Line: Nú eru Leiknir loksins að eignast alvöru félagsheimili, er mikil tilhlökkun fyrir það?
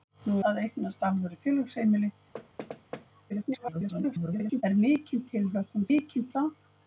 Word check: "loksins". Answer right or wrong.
wrong